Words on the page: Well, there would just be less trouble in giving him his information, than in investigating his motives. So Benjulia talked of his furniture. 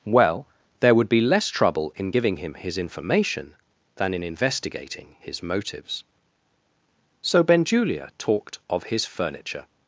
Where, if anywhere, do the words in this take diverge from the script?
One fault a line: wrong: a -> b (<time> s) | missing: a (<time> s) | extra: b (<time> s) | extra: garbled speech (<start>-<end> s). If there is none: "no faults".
missing: just (1.1 s)